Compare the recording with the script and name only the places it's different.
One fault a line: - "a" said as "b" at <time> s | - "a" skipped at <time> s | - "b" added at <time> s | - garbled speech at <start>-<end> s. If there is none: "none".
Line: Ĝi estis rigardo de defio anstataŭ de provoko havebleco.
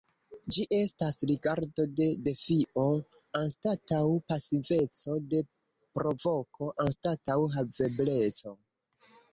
- "estis" said as "estas" at 0.8 s
- "pasiveco" added at 4.3 s
- "anstataŭ" added at 6.9 s